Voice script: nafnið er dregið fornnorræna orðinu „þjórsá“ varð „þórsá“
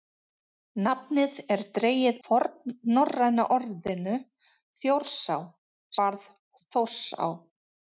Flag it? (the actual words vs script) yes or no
no